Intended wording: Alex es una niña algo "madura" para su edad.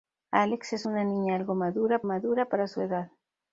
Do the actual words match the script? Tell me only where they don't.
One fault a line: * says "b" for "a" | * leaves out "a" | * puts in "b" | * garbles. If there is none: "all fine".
* puts in "madura"